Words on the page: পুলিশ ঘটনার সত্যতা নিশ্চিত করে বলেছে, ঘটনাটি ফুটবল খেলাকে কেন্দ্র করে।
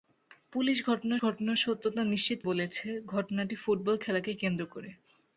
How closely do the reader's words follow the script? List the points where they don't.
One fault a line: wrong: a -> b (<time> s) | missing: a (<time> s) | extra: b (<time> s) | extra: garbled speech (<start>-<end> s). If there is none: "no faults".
extra: ঘটনার (1.2 s)
missing: করে (2.4 s)